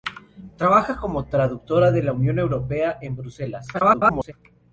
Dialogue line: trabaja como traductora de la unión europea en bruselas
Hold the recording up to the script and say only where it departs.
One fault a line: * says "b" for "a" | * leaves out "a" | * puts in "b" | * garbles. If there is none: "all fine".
* garbles